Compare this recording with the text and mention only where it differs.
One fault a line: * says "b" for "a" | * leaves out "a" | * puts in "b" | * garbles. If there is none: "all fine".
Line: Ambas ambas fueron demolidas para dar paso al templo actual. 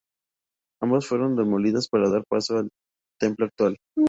* leaves out "ambas"